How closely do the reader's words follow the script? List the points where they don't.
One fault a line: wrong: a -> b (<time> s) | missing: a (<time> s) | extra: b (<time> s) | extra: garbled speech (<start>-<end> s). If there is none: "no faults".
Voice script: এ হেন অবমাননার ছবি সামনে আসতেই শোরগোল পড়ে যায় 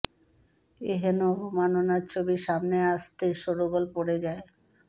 no faults